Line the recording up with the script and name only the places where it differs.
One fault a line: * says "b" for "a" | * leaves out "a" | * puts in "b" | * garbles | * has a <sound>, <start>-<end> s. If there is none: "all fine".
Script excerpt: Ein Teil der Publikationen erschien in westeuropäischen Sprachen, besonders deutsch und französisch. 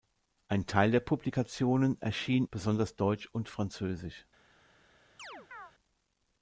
* leaves out "in westeuropäischen Sprachen"
* has a chirp, 5.2-5.7 s